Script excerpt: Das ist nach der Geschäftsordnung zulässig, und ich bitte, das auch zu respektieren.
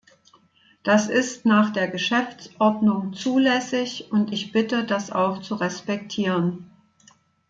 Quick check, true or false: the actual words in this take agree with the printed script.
true